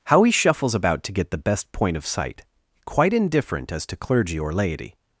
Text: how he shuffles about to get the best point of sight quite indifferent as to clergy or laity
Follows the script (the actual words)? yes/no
yes